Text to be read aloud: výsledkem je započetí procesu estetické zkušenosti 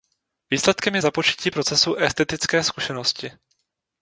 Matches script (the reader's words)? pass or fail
pass